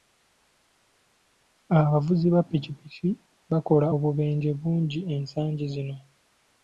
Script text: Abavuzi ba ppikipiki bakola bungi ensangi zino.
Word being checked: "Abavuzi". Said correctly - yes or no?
yes